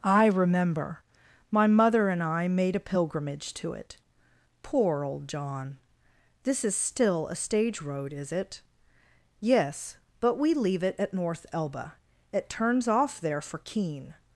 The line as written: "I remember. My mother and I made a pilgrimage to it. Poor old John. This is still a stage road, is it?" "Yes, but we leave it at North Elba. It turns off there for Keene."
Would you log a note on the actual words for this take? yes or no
no